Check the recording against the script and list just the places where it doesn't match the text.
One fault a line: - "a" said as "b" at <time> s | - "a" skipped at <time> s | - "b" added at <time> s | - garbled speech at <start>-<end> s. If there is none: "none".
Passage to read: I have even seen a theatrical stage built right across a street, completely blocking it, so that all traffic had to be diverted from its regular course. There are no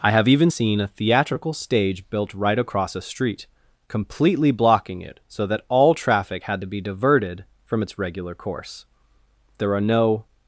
none